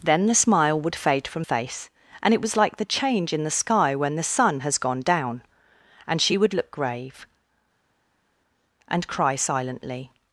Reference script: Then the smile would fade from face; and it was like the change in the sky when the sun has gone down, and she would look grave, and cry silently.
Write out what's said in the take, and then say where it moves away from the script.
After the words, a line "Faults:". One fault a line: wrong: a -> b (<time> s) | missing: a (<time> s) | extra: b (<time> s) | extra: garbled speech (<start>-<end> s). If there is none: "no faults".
Then the smile would fade from face; and it was like the change in the sky when the sun has gone down, and she would look grave, and cry silently.
Faults:
no faults